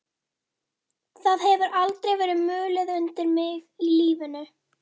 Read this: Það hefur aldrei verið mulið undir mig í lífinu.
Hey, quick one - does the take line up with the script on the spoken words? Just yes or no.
yes